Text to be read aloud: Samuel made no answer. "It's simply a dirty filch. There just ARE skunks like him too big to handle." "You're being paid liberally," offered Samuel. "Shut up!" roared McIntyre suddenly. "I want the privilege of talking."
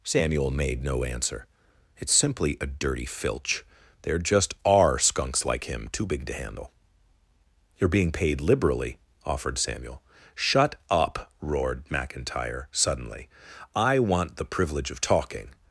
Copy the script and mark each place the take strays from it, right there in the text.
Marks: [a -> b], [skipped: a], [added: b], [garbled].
Samuel made no answer. "It's simply a dirty filch. There just ARE skunks like him too big to handle." "You're being paid liberally," offered Samuel. "Shut up!" roared McIntyre suddenly. "I want the privilege of talking."